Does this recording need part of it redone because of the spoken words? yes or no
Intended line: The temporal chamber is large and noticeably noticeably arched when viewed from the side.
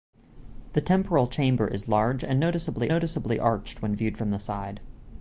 no